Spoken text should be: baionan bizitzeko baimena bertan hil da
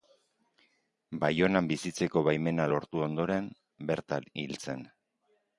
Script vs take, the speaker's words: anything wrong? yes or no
yes